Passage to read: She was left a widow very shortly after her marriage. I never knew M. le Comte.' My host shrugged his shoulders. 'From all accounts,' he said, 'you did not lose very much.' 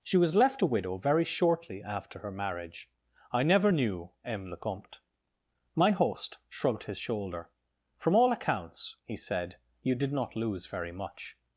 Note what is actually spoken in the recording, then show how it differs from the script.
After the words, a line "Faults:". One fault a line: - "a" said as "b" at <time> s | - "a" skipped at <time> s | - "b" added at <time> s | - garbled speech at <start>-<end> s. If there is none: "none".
She was left a widow very shortly after her marriage. I never knew M. le Comte.' My host shrugged his shoulder. 'From all accounts,' he said, 'you did not lose very much.'
Faults:
- "shoulders" said as "shoulder" at 7.0 s